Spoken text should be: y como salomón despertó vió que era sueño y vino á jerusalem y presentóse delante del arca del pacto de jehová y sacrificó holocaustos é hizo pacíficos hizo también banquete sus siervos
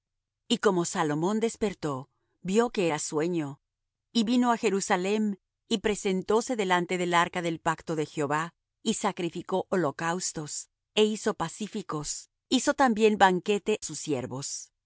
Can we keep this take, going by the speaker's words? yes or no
yes